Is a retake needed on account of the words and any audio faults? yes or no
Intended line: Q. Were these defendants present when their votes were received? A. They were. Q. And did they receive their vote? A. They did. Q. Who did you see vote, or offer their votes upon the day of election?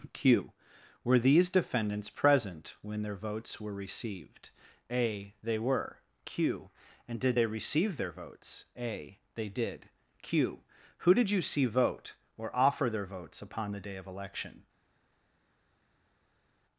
yes